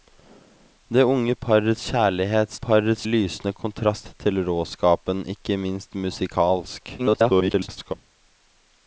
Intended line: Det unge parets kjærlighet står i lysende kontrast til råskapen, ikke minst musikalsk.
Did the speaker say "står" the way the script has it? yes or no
no